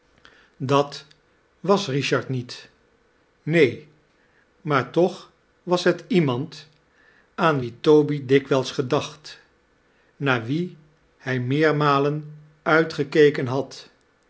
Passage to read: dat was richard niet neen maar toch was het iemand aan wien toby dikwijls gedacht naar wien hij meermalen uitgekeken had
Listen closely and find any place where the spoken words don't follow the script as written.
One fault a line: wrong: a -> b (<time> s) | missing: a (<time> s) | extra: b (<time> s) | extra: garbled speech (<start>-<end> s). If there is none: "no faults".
no faults